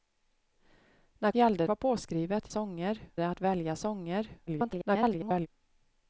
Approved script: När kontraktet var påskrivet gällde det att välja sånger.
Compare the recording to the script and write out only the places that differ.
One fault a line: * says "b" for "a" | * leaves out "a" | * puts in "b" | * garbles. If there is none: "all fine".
* says "gällde" for "kontraktet"
* says "sånger" for "gällde"
* garbles